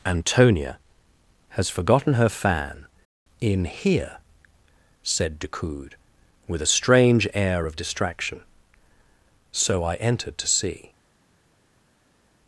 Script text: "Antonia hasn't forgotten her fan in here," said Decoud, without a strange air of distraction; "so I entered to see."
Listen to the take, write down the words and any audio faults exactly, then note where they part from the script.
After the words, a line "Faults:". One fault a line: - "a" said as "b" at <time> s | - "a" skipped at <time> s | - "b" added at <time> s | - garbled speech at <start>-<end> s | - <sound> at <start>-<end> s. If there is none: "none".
"Antonia has forgotten her fan in here," said Decoud, with a strange air of distraction; "so I entered to see."
Faults:
- "hasn't" said as "has" at 1.5 s
- "without" said as "with" at 6.5 s